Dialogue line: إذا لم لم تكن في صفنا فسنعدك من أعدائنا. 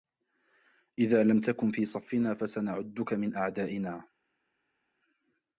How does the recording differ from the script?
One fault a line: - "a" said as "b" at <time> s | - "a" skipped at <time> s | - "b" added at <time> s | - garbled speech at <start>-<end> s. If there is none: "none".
- "لم" skipped at 1.4 s